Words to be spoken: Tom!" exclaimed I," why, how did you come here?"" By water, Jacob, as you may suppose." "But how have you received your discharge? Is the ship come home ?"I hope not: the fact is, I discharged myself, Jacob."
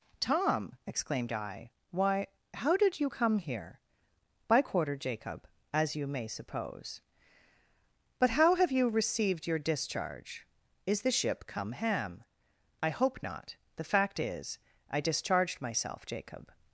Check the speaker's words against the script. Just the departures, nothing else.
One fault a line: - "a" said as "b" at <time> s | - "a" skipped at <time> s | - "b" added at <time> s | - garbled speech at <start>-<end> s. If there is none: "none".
- "water" said as "quarter" at 4.6 s
- "home" said as "ham" at 11.7 s